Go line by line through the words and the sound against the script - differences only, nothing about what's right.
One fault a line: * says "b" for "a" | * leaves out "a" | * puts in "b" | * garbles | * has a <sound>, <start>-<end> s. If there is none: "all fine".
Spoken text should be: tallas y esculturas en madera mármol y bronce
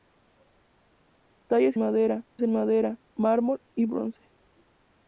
* says "madera" for "esculturas"